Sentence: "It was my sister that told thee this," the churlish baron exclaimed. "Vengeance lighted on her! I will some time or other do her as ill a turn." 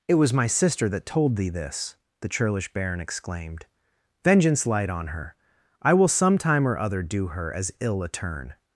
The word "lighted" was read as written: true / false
false